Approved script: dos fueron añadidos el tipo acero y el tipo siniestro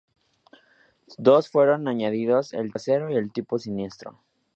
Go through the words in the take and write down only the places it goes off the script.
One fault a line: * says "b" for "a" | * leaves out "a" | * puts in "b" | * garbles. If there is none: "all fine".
* leaves out "tipo"